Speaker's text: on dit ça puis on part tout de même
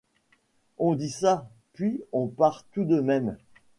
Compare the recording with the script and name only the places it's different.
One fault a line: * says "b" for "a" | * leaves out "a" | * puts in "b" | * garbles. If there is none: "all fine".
all fine